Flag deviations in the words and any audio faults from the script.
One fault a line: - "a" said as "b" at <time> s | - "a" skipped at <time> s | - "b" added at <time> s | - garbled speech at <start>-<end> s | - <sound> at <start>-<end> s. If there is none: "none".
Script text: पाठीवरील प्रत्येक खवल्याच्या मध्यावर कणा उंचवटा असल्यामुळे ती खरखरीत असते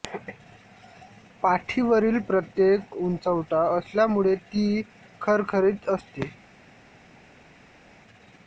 - "खवल्याच्या मध्यावर कणा" skipped at 2.8 s